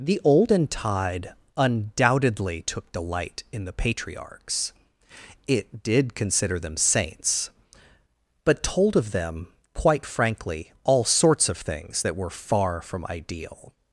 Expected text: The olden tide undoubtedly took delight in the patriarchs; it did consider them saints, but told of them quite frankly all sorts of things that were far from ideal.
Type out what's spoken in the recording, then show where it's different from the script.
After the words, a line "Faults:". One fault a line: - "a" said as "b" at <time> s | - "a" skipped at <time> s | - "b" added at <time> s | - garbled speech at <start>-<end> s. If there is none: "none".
The olden tide undoubtedly took delight in the patriarchs; it did consider them saints, but told of them quite frankly all sorts of things that were far from ideal.
Faults:
none